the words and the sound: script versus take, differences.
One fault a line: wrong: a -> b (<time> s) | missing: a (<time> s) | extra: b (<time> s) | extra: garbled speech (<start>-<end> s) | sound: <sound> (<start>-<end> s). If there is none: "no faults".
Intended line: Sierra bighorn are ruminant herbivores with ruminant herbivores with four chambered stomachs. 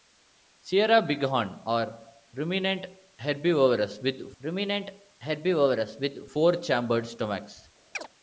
sound: chirp (7.9-8.1 s)